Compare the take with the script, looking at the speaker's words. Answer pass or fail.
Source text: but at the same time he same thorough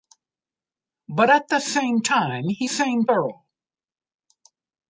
pass